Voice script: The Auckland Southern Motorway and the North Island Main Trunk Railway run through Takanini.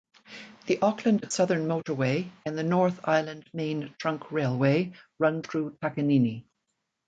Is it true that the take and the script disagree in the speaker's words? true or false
false